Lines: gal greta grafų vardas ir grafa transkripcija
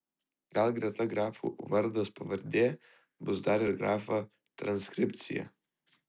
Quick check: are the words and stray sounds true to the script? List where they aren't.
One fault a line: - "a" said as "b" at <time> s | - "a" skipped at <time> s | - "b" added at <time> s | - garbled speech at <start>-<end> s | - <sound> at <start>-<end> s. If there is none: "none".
- "pavardė bus dar" added at 2.2 s